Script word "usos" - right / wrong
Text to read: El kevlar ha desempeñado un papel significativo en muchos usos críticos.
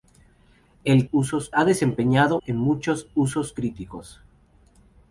right